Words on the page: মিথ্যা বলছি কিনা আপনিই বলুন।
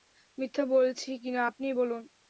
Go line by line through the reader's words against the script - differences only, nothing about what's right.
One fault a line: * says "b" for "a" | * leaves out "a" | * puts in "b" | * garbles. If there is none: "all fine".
all fine